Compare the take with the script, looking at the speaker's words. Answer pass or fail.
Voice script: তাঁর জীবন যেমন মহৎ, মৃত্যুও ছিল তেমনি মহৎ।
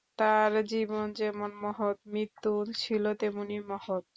pass